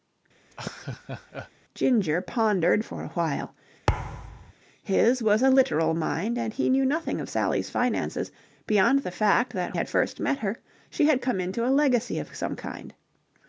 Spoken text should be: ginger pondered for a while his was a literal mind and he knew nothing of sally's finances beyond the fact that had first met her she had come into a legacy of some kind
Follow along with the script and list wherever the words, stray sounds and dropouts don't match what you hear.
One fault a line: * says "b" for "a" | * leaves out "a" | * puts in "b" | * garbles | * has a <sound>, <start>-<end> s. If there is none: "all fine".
* has a laugh, 0.5-1.5 s
* has a thud, 3.9-4.5 s